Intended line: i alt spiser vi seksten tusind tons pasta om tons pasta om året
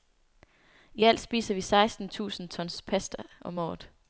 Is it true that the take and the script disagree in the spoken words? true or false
true